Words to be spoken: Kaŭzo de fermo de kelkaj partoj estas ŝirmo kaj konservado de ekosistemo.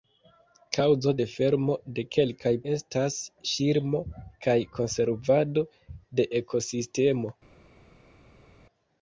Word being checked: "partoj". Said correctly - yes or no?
no